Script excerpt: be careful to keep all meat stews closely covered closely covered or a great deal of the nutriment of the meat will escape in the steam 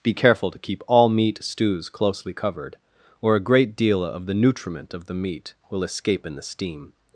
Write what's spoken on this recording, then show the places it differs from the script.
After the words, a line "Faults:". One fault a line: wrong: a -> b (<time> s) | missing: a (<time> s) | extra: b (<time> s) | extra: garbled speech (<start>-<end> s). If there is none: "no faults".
be careful to keep all meat stews closely covered or a great deal of the nutriment of the meat will escape in the steam
Faults:
missing: closely covered (2.8 s)